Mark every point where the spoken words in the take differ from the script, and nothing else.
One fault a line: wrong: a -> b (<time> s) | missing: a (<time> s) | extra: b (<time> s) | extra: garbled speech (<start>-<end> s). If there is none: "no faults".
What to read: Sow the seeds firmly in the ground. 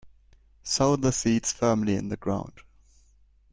no faults